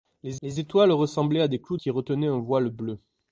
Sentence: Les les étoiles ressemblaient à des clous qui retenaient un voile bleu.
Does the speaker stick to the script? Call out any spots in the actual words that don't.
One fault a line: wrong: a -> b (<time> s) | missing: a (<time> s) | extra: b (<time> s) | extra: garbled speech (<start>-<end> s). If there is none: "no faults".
no faults